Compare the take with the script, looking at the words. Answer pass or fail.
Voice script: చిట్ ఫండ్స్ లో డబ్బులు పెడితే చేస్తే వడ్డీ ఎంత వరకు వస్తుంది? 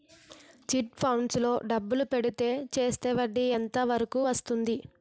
pass